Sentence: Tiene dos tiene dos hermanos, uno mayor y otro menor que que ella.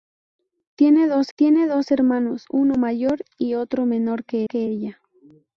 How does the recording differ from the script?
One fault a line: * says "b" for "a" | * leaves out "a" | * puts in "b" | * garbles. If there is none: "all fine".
all fine